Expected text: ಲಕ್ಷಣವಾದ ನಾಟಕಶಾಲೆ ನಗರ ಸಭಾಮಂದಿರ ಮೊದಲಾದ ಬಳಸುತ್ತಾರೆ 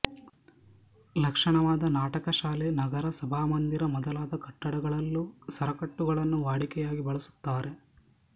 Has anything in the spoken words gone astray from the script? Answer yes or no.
yes